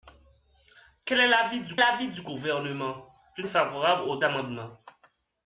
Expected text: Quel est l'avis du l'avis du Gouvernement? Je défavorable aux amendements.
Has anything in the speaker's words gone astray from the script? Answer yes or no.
no